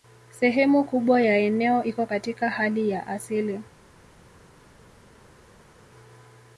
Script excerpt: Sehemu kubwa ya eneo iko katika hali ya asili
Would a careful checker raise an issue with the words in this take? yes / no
no